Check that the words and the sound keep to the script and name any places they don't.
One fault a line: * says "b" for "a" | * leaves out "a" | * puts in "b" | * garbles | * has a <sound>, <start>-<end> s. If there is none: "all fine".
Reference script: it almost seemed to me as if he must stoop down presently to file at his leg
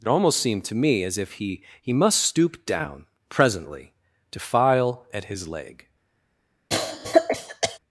* puts in "he"
* has a cough, 6.7-7.8 s